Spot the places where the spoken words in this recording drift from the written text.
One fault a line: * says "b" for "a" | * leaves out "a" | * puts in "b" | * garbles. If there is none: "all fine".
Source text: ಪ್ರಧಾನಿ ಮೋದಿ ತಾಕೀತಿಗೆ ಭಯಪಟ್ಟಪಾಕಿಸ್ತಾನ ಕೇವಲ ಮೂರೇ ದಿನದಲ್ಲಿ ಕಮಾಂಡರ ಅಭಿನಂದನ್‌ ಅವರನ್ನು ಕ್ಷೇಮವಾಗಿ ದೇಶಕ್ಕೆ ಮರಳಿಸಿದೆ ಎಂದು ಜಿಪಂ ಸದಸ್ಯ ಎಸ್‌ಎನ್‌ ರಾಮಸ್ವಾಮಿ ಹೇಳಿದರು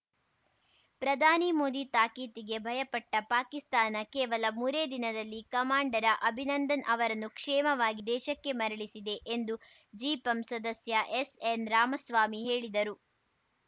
all fine